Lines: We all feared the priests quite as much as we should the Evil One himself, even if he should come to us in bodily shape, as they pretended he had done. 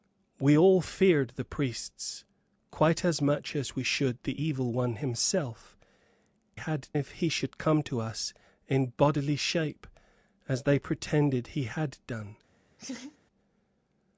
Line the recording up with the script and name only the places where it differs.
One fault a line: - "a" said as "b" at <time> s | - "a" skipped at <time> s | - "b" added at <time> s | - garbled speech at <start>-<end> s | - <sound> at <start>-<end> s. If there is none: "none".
- "even" said as "had" at 6.5 s
- laugh at 12.8-13.2 s